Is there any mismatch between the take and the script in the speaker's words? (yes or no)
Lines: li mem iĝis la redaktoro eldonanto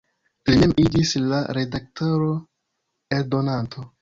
no